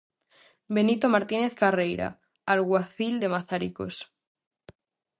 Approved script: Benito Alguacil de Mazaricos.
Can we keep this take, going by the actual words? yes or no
no